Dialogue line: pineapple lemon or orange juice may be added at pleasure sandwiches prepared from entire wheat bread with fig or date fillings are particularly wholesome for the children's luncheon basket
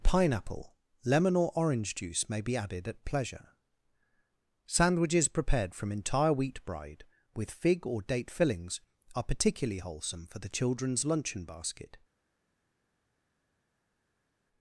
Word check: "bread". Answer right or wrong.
wrong